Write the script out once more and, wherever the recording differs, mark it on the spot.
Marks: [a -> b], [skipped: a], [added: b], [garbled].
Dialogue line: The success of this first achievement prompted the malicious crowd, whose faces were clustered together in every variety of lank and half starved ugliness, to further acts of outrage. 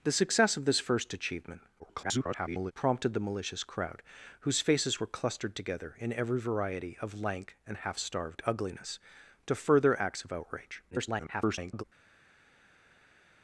The success of this first achievement [garbled] prompted the malicious crowd, whose faces were clustered together in every variety of lank and half starved ugliness, to further acts of outrage. [garbled]